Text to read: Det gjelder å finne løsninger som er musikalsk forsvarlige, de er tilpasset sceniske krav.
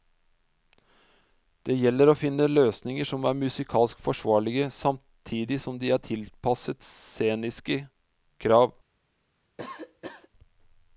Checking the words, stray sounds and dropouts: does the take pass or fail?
fail